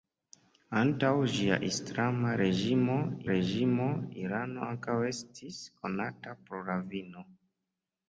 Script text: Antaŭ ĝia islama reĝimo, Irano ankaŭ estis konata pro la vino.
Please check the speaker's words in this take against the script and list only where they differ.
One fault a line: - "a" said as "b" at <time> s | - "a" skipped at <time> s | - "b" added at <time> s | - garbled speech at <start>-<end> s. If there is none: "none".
- "reĝimo" added at 3.3 s